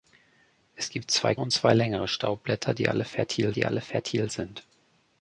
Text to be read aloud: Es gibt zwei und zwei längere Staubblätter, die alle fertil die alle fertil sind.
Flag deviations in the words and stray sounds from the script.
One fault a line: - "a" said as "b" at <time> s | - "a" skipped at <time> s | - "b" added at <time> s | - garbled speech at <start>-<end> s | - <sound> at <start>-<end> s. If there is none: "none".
none